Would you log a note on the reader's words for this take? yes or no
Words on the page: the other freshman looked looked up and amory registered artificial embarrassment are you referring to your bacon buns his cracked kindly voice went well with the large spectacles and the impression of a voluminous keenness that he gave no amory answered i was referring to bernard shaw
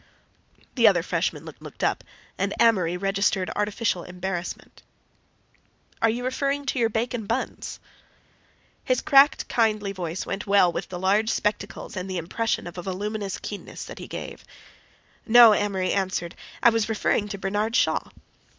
no